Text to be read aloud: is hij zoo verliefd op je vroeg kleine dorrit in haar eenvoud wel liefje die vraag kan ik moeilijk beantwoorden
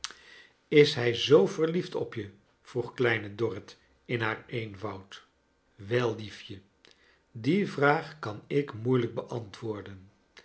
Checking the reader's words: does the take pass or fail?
pass